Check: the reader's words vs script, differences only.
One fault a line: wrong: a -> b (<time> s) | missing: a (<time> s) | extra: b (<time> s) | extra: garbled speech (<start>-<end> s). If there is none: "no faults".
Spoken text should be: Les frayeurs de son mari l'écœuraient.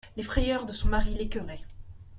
no faults